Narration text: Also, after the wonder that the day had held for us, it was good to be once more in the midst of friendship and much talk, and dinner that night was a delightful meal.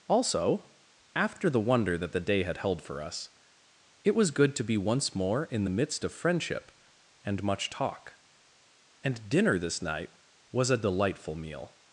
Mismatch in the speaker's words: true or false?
true